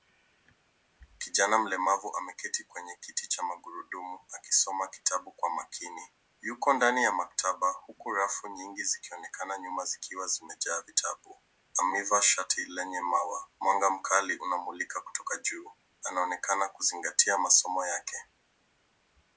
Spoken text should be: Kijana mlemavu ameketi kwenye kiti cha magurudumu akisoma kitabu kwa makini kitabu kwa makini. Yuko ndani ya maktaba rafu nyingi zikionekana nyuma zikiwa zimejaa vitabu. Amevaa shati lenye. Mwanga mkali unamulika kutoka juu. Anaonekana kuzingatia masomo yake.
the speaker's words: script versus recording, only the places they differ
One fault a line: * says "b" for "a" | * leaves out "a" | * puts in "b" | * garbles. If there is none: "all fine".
* leaves out "kitabu kwa makini"
* puts in "huku"
* puts in "maua"